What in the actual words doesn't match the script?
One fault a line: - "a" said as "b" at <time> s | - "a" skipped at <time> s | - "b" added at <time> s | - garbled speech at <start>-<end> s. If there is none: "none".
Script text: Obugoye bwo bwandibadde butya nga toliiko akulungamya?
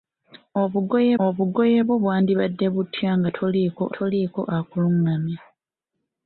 - "obugoye" added at 1.2 s
- "toliiko" added at 4.0 s